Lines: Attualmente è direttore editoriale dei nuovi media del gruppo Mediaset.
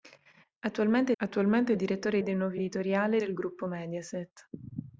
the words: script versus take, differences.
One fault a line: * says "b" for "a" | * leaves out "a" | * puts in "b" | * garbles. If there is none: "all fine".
* puts in "attualmente"
* leaves out "editoriale"
* says "editoriale" for "media"